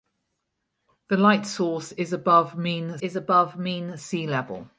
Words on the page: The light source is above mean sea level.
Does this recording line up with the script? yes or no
no